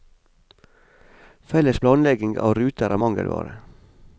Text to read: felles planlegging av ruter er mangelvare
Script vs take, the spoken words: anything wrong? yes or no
no